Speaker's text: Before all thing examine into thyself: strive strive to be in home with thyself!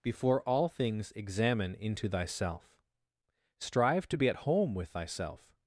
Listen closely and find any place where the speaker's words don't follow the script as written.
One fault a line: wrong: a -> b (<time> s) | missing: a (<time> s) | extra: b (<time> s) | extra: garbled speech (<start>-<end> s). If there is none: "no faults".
wrong: thing -> things (0.7 s)
missing: strive (4.1 s)
wrong: in -> at (4.3 s)